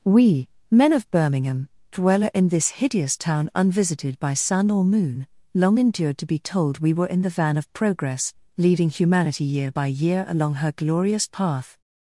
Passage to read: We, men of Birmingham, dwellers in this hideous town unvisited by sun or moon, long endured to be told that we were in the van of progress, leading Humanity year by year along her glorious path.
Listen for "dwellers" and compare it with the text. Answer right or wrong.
wrong